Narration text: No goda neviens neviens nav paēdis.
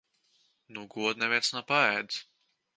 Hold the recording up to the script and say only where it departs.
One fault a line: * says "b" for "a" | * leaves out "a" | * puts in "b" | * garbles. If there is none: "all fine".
* leaves out "neviens"